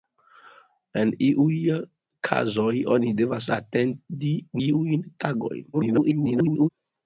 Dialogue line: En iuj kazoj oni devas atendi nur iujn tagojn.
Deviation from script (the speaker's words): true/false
true